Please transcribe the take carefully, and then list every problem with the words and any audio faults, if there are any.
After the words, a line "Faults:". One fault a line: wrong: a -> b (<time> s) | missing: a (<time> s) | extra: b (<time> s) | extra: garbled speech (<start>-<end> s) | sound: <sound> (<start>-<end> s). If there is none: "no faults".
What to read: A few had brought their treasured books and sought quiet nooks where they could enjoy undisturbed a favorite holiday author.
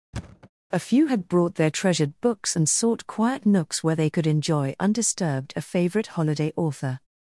A few had brought their treasured books and sought quiet nooks where they could enjoy undisturbed a favorite holiday author.
Faults:
sound: thud (0.1-0.5 s)